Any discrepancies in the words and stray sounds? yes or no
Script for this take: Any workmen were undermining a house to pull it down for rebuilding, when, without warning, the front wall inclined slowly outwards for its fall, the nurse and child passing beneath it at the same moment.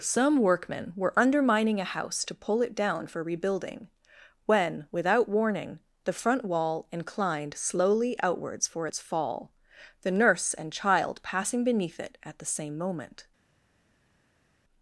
yes